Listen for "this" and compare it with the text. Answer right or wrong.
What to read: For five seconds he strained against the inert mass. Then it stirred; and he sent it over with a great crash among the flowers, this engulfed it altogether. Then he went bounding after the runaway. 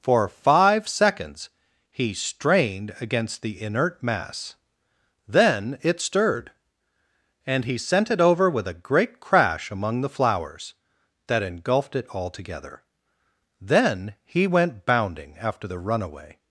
wrong